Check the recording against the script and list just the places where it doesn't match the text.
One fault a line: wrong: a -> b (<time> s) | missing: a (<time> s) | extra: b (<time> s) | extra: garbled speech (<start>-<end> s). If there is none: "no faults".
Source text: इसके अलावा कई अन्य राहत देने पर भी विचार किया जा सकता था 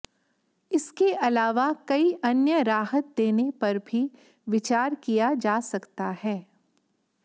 wrong: था -> है (6.2 s)